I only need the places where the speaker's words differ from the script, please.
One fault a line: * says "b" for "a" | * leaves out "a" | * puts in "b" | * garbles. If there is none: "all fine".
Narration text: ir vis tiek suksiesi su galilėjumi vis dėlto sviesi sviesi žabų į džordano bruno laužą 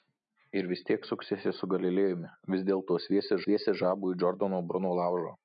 all fine